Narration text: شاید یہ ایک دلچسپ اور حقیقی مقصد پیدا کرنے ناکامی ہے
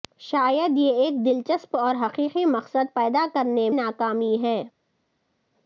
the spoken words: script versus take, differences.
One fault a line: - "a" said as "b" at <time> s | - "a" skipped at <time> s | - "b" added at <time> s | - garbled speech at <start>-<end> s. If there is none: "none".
none